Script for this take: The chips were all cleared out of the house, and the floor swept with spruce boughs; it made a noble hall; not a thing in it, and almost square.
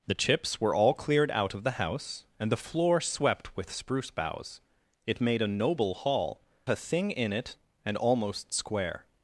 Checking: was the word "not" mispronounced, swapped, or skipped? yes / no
yes